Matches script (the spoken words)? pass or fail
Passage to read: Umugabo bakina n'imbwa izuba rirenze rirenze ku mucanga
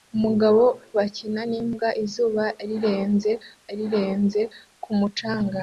pass